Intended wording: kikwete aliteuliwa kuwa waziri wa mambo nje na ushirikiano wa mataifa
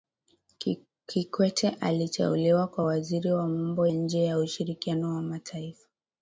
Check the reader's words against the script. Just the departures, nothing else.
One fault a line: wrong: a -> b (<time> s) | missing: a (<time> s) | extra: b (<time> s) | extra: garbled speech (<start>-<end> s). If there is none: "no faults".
no faults